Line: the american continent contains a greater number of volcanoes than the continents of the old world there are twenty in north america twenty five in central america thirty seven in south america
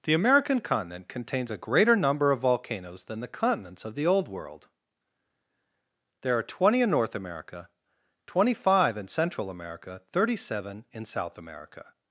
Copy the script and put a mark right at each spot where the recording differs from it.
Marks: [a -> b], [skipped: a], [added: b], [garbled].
the american continent contains a greater number of volcanoes than the continents of the old world there are twenty in north america twenty five in central america thirty seven in south america